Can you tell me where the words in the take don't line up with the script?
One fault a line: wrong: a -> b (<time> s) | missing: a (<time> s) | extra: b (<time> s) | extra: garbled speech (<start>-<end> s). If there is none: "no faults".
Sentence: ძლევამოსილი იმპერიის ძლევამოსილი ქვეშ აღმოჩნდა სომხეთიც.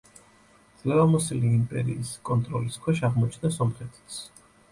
wrong: ძლევამოსილი -> კონტროლის (2.3 s)